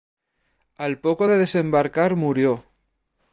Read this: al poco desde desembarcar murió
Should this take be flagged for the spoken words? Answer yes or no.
yes